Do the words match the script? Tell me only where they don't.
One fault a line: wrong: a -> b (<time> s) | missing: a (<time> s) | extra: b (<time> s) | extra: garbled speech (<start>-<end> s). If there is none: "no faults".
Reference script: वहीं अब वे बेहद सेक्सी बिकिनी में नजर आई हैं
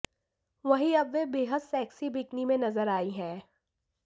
no faults